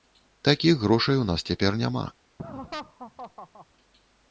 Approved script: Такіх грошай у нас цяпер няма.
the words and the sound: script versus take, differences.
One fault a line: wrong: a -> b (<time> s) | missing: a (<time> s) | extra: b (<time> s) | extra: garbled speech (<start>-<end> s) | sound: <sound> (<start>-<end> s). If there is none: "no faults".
sound: laugh (2.4-3.7 s)